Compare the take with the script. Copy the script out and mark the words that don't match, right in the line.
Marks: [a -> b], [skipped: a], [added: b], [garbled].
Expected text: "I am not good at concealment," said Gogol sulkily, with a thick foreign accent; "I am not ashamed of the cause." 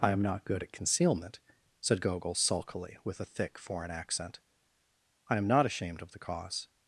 "I am not good at concealment," said Gogol sulkily, with a thick foreign accent; "I am not ashamed of the cause."